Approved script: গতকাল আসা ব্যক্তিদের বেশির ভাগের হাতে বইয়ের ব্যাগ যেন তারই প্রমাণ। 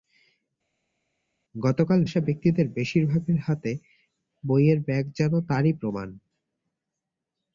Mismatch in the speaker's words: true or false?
false